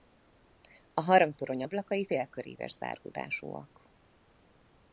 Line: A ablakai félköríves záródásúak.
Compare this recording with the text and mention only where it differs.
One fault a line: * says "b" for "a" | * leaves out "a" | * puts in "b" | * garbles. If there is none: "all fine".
* puts in "harangtorony"